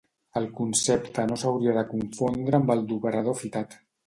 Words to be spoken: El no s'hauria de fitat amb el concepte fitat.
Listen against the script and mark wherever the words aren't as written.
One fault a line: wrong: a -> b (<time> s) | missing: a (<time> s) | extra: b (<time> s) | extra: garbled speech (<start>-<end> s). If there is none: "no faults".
extra: concepte (0.6 s)
wrong: fitat -> confondre (1.9 s)
wrong: concepte -> d'operador (2.9 s)